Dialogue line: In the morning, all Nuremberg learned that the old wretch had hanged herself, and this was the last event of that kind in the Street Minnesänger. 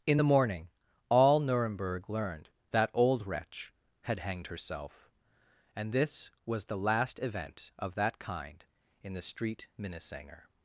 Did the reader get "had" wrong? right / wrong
right